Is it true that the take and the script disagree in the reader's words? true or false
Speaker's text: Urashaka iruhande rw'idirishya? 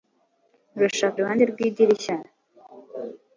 false